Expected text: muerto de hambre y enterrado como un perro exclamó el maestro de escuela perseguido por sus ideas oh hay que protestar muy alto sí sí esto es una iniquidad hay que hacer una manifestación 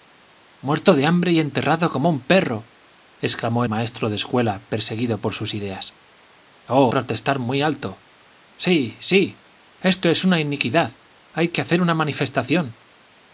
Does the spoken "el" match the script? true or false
false